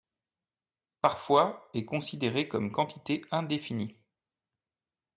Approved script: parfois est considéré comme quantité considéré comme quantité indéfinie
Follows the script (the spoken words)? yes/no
no